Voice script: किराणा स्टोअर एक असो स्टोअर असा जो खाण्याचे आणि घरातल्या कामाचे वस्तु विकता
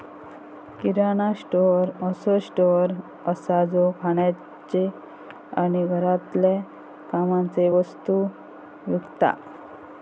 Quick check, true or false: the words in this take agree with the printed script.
false